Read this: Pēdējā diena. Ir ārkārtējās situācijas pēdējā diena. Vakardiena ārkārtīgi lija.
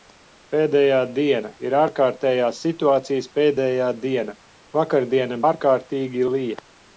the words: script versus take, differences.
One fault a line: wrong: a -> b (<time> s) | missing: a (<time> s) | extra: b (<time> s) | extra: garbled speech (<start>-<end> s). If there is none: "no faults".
no faults